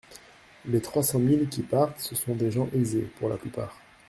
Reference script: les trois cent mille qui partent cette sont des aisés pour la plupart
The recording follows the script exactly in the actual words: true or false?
false